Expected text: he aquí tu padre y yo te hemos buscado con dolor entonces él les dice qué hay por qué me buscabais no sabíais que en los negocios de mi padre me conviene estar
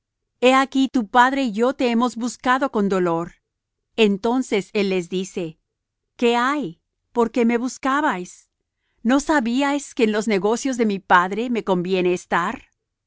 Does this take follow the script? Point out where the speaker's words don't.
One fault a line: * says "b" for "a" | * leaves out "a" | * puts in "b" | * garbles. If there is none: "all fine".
all fine